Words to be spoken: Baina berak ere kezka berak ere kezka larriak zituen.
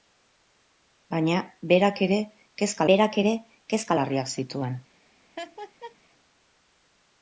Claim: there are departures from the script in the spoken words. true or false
false